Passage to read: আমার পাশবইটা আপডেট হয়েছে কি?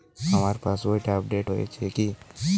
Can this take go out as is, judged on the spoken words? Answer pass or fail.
pass